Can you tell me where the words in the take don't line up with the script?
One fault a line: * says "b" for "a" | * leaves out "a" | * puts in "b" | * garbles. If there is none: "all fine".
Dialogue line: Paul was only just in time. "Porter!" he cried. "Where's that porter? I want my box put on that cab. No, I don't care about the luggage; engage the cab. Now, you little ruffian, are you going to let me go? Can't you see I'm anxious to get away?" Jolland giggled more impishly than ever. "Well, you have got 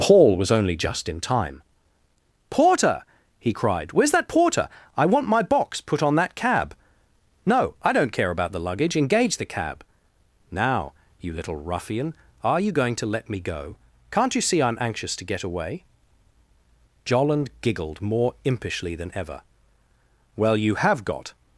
all fine